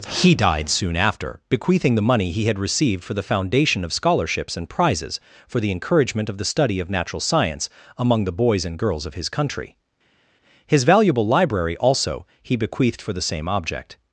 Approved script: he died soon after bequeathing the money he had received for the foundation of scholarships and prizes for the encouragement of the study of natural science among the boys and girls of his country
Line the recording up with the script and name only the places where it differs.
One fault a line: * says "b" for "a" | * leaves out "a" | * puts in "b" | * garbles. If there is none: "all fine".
* puts in "his valuable library also he bequeathed for the same object"